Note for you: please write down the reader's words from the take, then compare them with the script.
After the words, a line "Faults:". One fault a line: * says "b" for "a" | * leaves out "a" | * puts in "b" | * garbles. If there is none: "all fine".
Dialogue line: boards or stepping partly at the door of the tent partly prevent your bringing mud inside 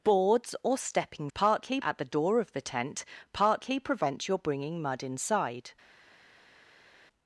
boards or stepping partly at the door of the tent partly prevent your bringing mud inside
Faults:
all fine